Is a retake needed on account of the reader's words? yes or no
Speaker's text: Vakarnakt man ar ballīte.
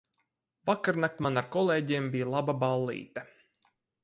yes